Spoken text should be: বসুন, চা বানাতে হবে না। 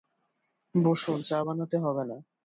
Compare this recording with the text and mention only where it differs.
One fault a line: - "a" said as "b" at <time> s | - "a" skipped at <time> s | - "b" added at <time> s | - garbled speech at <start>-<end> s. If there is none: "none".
none